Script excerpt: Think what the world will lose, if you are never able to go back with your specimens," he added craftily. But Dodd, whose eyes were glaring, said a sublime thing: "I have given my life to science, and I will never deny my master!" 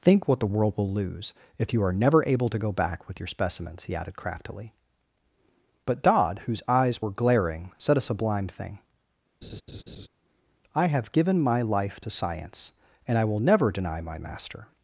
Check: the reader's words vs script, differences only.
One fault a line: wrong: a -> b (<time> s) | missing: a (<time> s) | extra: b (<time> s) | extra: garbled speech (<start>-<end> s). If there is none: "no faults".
no faults